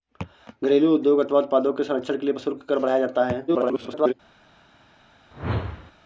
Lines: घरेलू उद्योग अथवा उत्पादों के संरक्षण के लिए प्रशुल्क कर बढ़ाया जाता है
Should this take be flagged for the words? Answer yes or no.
yes